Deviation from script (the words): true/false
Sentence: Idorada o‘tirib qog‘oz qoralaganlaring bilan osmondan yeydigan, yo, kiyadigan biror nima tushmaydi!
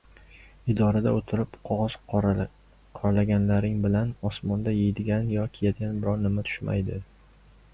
false